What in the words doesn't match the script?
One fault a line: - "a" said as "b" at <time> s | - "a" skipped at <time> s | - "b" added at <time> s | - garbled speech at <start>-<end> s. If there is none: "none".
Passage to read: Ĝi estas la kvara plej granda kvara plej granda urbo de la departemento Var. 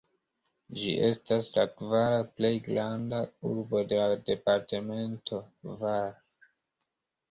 - "kvara plej granda" skipped at 3.2 s